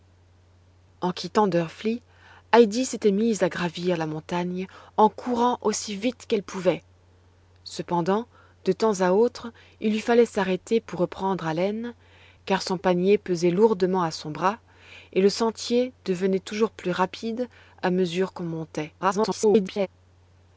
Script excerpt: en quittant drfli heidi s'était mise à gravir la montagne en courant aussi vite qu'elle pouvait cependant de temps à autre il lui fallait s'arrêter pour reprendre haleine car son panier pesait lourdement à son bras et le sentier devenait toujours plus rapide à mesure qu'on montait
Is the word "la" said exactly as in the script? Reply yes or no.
yes